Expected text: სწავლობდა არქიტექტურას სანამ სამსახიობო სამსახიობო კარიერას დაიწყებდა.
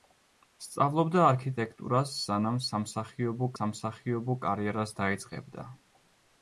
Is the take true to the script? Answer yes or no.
yes